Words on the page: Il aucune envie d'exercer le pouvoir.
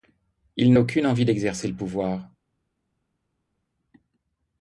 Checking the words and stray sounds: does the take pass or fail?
pass